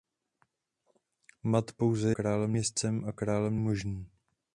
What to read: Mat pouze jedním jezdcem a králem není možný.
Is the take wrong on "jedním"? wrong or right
wrong